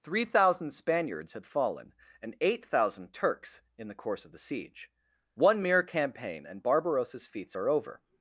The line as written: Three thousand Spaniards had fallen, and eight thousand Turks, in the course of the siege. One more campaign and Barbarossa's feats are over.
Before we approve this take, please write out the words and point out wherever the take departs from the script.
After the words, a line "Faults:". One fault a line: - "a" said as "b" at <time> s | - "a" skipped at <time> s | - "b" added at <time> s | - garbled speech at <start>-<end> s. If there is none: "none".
Three thousand Spaniards had fallen, and eight thousand Turks, in the course of the siege. One mere campaign and Barbarossa's feats are over.
Faults:
- "more" said as "mere" at 5.6 s